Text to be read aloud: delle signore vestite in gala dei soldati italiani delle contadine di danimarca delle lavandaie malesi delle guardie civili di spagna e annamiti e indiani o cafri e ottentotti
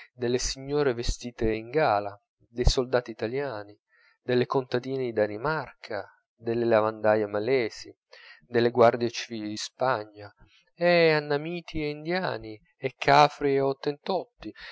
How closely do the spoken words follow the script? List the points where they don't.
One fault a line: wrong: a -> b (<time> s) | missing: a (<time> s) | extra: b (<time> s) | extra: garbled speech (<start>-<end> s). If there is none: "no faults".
wrong: o -> e (12.8 s)